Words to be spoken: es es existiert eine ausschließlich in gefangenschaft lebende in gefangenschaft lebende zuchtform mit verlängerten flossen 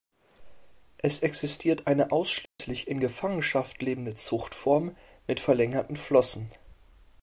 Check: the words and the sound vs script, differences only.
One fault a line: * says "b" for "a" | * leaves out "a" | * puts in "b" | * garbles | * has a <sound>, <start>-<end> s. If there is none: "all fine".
* leaves out "es"
* has a dropout, 2.5-2.6 s
* leaves out "in gefangenschaft lebende"